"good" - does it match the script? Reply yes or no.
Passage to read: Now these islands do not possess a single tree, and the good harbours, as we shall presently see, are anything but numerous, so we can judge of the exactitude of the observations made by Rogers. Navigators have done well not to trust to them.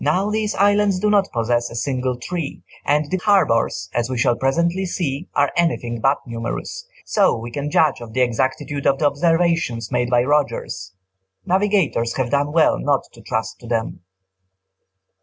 no